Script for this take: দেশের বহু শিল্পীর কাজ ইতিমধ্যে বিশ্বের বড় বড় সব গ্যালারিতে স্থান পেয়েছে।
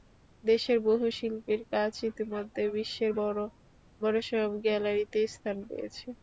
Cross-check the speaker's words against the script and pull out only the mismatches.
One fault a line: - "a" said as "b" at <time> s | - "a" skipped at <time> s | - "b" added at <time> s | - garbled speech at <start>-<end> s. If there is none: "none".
none